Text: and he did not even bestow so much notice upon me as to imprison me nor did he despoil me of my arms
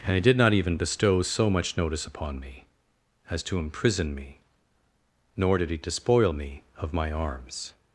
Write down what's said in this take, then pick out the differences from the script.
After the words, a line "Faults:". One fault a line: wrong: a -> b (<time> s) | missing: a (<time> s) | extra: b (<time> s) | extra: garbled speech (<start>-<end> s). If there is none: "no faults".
and he did not even bestow so much notice upon me as to imprison me nor did he despoil me of my arms
Faults:
no faults